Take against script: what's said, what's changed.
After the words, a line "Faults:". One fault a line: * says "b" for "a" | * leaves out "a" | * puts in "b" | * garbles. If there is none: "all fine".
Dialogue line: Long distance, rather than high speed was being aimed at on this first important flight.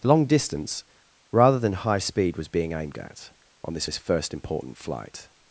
Long distance, rather than high speed was being aimed at on this this first important flight.
Faults:
* puts in "this"